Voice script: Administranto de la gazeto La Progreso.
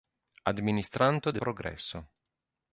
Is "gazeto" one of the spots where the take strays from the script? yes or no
yes